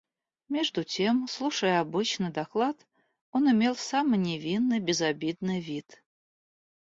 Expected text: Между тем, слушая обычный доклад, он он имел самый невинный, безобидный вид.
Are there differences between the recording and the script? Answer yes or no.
yes